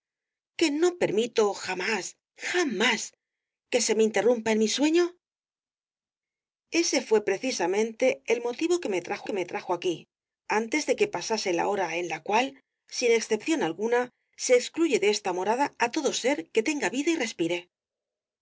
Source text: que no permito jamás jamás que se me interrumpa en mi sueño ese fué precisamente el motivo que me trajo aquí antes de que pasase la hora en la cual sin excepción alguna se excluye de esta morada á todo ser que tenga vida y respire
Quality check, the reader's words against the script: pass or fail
fail